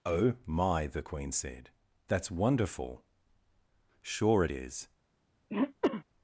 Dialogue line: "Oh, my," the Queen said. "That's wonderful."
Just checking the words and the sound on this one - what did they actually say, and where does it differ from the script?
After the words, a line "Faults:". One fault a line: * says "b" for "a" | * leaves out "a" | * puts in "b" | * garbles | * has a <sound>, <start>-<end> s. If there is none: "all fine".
"Oh, my," the Queen said. "That's wonderful." "Sure it is
Faults:
* puts in "Sure it is"
* has a throat clearing, 5.5-6.0 s